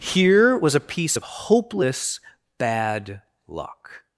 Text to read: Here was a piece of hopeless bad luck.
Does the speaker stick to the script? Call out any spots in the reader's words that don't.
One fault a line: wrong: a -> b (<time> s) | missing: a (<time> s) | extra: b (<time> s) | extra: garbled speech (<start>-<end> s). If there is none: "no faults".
no faults